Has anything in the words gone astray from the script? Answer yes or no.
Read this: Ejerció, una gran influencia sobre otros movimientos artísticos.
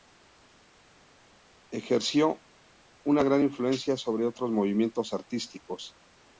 no